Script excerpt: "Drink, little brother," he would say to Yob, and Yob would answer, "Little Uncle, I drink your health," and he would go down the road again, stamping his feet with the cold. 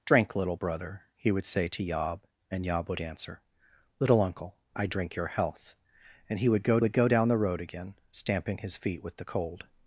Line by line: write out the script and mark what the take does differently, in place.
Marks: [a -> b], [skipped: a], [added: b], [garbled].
"Drink, little brother," he would say to Yob, and Yob would answer, "Little Uncle, I drink your health," and he would go [added: would go] down the road again, stamping his feet with the cold.